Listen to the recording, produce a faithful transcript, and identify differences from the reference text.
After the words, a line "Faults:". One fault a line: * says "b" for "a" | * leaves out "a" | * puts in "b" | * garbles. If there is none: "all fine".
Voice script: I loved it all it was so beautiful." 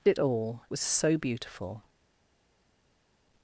I it all was so beautiful."
Faults:
* leaves out "loved"
* leaves out "it"